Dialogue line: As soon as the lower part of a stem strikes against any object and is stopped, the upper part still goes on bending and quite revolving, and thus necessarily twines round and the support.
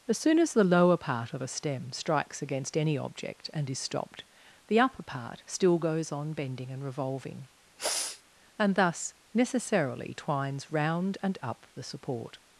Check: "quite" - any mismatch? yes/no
yes